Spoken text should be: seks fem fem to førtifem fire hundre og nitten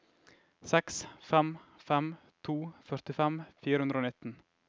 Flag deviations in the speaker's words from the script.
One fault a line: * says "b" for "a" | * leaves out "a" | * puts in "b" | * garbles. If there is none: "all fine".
all fine